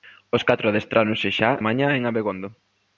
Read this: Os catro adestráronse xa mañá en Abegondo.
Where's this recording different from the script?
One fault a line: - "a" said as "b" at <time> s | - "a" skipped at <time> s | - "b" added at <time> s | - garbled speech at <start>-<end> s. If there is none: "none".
none